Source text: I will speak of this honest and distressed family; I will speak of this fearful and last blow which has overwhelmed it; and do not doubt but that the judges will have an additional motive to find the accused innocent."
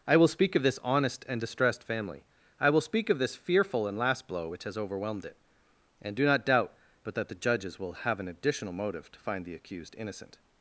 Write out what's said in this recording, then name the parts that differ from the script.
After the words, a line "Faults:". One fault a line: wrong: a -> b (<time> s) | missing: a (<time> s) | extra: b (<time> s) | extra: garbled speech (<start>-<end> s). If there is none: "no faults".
I will speak of this honest and distressed family; I will speak of this fearful and last blow which has overwhelmed it; and do not doubt but that the judges will have an additional motive to find the accused innocent."
Faults:
no faults